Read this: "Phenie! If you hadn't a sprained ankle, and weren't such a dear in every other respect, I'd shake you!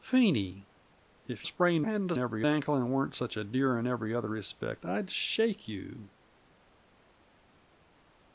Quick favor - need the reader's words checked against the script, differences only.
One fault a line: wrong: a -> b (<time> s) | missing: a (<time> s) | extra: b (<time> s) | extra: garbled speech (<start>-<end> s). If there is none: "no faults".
wrong: you -> sprained (1.5 s)
wrong: sprained -> every (2.2 s)